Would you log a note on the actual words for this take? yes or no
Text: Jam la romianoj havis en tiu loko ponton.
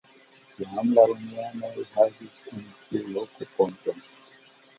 no